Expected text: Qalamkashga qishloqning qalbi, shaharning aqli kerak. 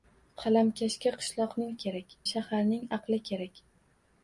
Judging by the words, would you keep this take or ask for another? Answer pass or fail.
fail